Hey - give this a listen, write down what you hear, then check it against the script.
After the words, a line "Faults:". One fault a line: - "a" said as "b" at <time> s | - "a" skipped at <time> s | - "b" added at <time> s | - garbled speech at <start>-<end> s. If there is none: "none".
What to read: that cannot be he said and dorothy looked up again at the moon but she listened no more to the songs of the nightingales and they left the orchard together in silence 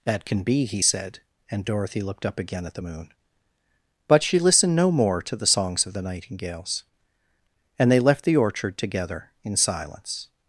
that can be he said and dorothy looked up again at the moon but she listened no more to the songs of the nightingales and they left the orchard together in silence
Faults:
- "cannot" said as "can" at 0.2 s